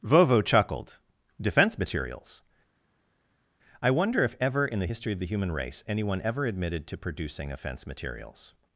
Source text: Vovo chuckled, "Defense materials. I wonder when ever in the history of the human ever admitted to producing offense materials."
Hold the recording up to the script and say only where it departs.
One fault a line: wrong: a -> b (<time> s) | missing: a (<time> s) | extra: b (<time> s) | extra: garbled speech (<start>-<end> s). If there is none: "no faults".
wrong: when -> if (4.2 s)
extra: race anyone (5.5 s)